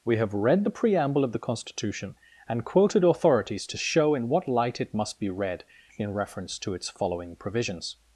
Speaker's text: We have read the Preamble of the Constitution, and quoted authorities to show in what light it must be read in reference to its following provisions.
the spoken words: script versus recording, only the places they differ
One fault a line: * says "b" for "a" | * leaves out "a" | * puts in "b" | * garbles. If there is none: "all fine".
all fine